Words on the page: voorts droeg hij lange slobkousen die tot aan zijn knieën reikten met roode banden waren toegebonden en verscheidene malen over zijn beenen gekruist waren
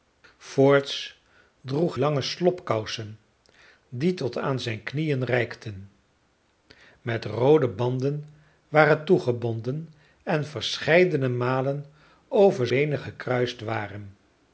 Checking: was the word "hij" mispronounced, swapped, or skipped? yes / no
yes